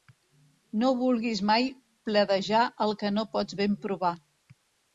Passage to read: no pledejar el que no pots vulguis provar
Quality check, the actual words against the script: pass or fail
fail